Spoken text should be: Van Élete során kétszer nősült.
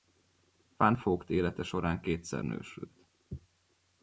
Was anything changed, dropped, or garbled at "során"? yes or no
no